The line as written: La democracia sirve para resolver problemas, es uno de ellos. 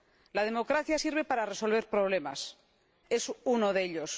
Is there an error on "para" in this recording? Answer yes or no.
no